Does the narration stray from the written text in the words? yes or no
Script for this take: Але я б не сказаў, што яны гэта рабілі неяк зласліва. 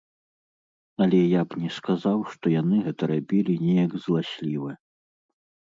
no